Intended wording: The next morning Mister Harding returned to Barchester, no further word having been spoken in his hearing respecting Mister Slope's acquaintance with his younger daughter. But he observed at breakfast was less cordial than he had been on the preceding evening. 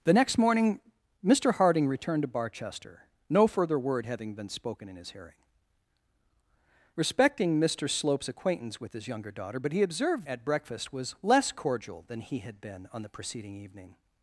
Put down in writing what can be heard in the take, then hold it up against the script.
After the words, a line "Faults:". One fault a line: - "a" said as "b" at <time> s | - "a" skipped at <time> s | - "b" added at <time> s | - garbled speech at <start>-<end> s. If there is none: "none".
The next morning Mister Harding returned to Barchester, no further word having been spoken in his hearing respecting Mister Slope's acquaintance with his younger daughter. But he observed at breakfast was less cordial than he had been on the preceding evening.
Faults:
none